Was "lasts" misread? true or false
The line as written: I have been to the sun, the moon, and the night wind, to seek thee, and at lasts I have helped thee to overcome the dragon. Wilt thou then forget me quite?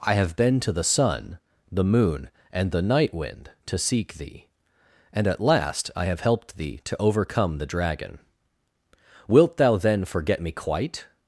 true